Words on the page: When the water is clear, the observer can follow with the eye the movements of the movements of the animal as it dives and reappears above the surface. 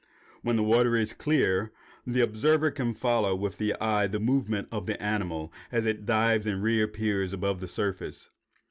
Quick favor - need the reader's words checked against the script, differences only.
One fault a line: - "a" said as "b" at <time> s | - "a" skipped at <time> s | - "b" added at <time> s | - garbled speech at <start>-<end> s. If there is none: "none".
- "movements of the" skipped at 5.0 s